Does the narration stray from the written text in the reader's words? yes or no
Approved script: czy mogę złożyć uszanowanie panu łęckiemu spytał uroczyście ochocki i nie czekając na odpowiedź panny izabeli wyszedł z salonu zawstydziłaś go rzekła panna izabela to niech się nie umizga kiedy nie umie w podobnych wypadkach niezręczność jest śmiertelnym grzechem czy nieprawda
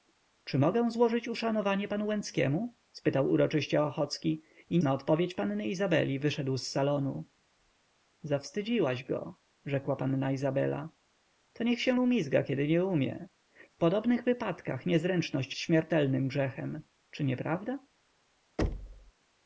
yes